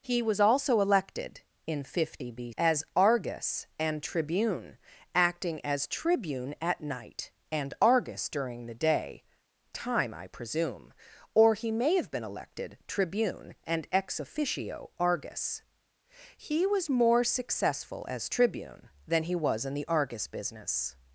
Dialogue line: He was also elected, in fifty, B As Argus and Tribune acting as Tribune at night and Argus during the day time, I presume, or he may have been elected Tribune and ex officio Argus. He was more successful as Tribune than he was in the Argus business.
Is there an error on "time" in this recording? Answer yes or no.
no